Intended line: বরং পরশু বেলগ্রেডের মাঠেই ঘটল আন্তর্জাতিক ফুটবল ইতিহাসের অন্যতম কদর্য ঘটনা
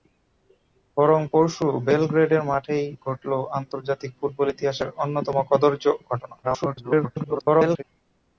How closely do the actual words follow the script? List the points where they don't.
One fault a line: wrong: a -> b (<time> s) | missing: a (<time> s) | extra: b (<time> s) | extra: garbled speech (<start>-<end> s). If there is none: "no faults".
extra: garbled speech (6.4-7.8 s)